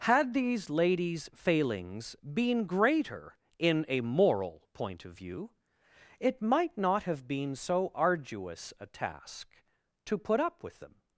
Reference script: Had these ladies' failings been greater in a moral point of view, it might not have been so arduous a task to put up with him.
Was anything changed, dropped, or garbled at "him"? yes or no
yes